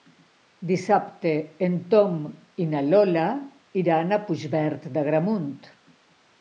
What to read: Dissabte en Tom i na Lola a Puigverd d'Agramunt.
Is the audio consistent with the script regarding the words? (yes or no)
no